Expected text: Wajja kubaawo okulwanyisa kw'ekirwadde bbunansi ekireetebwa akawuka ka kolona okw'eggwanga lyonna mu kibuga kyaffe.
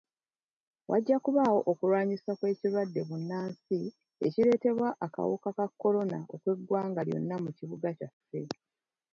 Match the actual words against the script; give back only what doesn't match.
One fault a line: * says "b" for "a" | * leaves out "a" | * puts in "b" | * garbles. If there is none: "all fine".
all fine